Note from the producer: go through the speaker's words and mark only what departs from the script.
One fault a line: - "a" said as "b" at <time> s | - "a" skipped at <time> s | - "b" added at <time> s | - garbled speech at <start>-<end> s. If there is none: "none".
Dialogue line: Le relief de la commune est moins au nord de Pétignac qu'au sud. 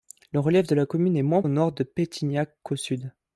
none